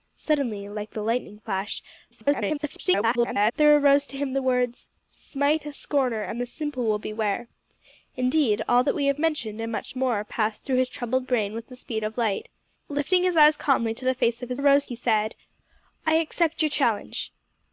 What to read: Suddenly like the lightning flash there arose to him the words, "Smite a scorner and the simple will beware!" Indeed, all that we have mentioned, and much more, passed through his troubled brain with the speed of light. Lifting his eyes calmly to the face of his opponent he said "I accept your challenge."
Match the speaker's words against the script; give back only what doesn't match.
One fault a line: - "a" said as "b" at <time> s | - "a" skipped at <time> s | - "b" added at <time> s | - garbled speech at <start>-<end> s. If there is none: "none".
- garbled speech at 2.1-3.5 s
- "opponent" said as "arose" at 14.5 s